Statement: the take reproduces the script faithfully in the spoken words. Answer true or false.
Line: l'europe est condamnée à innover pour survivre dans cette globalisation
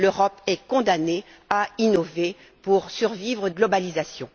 false